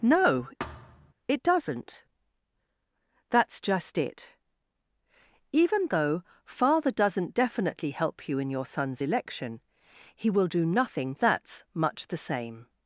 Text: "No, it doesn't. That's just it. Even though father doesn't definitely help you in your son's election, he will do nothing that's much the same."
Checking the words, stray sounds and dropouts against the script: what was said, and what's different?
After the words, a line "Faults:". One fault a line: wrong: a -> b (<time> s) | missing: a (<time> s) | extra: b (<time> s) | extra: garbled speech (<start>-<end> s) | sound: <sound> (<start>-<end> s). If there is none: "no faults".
"No, it doesn't. That's just it. Even though father doesn't definitely help you in your son's election, he will do nothing that's much the same."
Faults:
sound: thud (0.6-1.1 s)